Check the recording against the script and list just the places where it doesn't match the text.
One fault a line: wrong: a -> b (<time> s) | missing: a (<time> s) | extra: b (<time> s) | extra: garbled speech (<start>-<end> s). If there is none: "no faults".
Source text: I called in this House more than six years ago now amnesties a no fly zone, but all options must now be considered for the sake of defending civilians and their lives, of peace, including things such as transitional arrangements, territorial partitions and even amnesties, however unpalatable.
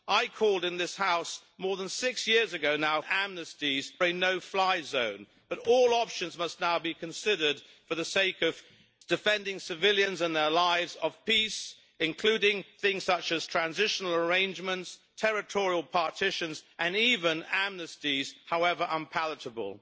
no faults